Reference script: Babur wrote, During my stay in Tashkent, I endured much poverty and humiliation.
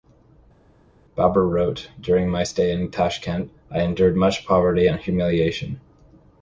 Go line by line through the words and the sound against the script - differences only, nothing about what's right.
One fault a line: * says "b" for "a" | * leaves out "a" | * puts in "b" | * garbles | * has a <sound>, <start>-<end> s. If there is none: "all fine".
all fine